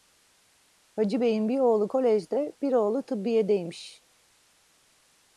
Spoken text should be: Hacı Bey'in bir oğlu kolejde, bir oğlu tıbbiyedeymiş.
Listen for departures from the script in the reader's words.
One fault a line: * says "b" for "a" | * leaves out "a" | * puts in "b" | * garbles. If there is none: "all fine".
all fine